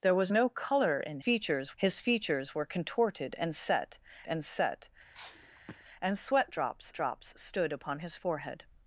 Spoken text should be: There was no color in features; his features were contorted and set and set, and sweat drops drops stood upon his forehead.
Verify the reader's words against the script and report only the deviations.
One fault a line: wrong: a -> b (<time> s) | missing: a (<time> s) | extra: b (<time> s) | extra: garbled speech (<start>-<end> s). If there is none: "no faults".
no faults